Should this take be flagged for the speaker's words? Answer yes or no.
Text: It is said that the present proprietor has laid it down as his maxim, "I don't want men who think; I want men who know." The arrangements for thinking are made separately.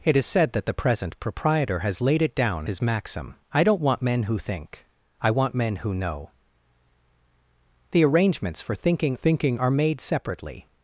yes